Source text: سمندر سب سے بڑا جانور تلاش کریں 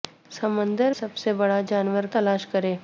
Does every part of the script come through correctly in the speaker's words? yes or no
yes